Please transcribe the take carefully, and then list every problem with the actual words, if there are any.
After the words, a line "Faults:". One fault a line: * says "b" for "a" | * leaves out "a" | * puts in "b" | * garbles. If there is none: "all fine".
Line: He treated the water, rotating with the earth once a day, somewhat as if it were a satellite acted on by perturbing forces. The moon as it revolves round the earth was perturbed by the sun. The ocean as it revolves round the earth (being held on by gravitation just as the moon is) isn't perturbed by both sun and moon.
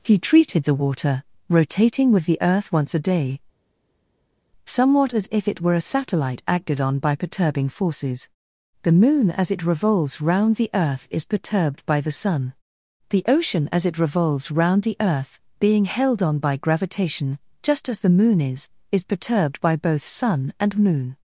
He treated the water, rotating with the earth once a day, somewhat as if it were a satellite acted on by perturbing forces. The moon as it revolves round the earth is perturbed by the sun. The ocean as it revolves round the earth (being held on by gravitation just as the moon is) is perturbed by both sun and moon.
Faults:
* says "is" for "was"
* says "is" for "isn't"